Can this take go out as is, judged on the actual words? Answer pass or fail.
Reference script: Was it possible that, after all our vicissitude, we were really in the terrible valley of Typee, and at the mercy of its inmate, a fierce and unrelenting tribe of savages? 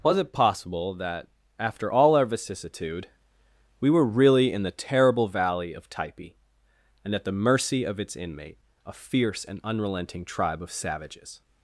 pass